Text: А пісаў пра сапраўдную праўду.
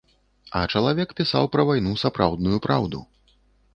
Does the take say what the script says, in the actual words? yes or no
no